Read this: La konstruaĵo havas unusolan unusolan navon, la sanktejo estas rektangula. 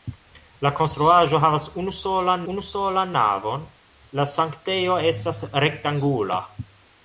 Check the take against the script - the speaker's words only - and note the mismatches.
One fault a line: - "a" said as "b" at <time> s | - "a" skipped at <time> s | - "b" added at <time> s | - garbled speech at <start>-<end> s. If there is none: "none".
none